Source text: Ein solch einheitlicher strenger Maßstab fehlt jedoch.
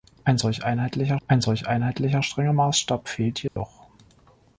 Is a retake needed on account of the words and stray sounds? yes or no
yes